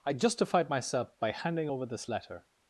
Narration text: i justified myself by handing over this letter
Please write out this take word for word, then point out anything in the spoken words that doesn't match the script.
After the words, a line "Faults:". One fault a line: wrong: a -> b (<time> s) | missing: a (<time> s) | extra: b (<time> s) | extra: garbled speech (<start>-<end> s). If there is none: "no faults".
i justified myself by handing over this letter
Faults:
no faults